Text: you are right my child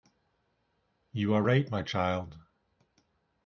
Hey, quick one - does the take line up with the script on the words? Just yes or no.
yes